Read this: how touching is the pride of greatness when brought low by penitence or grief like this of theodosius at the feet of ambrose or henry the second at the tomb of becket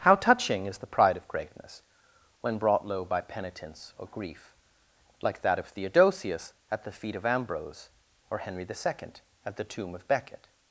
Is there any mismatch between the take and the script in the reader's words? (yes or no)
yes